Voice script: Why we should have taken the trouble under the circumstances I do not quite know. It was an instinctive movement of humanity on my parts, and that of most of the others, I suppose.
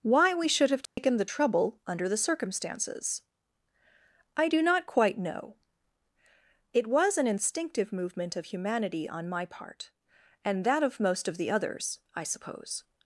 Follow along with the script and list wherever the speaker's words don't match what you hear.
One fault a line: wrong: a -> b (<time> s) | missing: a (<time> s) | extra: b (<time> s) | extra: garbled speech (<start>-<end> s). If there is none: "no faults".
wrong: parts -> part (9.5 s)